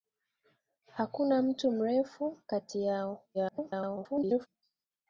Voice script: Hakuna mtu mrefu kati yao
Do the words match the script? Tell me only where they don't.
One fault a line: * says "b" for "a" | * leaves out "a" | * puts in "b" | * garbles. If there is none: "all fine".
* garbles